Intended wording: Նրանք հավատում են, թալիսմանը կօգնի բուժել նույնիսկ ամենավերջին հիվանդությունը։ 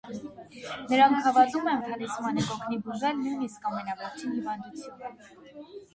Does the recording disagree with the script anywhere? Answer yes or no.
no